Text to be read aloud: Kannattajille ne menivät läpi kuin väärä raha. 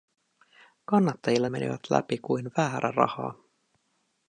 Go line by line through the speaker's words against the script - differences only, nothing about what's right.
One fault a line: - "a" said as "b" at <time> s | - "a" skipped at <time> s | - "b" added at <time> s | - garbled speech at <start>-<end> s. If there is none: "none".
- "ne" skipped at 1.5 s